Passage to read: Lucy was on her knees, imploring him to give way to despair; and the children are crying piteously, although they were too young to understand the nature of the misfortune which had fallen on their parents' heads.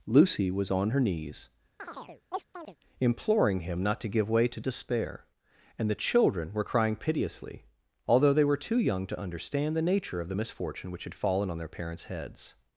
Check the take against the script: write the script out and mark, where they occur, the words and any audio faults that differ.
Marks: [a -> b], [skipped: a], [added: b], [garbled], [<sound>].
Lucy was on her knees, [chirp] imploring him [added: not] to give way to despair; and the children [are -> were] crying piteously, although they were too young to understand the nature of the misfortune which had fallen on their parents' heads.